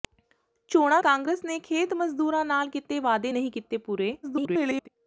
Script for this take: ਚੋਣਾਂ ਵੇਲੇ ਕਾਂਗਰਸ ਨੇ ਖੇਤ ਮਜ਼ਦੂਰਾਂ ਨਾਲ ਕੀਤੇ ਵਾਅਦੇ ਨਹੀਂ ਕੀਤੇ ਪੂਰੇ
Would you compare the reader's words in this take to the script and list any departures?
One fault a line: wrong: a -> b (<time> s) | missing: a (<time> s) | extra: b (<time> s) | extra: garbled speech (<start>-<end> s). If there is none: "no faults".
missing: ਵੇਲੇ (1.0 s)
extra: garbled speech (4.2-4.9 s)